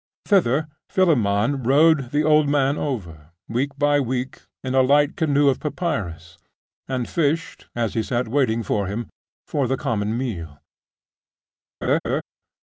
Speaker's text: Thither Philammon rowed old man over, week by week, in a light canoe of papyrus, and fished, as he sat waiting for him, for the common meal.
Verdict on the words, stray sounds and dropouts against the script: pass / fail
fail